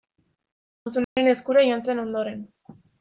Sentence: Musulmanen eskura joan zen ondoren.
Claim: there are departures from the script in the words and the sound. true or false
true